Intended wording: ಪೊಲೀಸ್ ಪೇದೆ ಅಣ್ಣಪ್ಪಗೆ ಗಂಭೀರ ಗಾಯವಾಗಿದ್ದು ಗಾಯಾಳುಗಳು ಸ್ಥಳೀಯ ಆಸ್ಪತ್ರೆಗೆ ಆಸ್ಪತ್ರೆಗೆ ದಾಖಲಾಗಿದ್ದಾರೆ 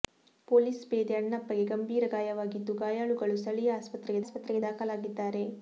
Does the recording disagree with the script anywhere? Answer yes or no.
no